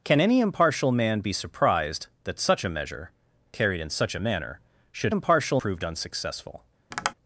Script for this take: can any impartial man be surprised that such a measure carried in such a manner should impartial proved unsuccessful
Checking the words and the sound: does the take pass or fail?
fail